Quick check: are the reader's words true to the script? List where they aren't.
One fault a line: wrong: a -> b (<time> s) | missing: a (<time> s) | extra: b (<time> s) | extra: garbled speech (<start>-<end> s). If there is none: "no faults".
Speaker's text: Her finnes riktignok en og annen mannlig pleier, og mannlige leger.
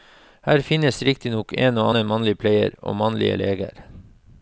no faults